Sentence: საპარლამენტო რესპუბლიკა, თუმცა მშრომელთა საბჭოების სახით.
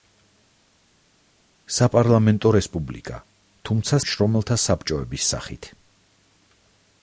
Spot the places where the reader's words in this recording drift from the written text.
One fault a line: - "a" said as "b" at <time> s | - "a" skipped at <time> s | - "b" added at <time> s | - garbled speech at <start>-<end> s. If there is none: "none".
none